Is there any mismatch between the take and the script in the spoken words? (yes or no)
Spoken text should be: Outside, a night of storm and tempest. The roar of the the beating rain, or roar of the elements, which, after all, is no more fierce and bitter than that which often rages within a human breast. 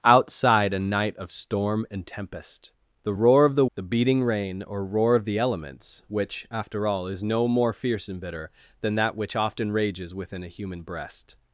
no